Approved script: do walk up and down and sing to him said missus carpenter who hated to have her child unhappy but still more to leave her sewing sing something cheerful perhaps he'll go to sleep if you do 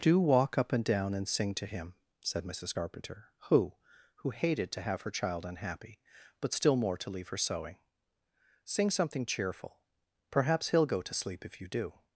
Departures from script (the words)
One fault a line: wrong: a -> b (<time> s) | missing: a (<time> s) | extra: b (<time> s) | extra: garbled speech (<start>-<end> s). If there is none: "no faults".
extra: who (4.2 s)